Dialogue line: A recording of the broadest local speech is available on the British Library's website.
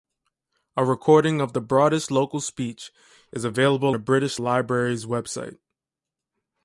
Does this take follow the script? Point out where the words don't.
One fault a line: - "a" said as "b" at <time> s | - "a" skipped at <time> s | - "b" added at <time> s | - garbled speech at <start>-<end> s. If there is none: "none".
- "on" skipped at 4.0 s